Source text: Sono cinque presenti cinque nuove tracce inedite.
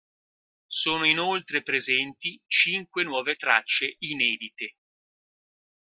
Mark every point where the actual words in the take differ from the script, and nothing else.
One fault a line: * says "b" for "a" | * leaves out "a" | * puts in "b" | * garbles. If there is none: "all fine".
* says "inoltre" for "cinque"